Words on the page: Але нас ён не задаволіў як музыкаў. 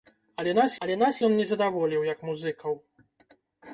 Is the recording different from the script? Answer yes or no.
yes